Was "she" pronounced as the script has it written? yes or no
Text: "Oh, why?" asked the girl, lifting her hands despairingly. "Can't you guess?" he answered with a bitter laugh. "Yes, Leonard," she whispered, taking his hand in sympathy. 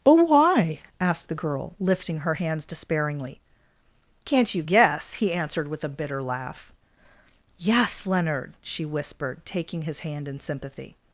yes